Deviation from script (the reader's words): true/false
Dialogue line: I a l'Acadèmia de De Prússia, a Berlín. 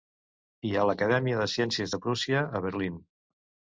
true